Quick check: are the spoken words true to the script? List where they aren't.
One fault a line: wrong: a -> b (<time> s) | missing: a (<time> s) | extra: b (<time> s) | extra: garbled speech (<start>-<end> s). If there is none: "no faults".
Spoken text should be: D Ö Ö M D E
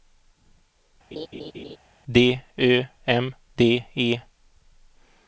missing: Ö (2.8 s)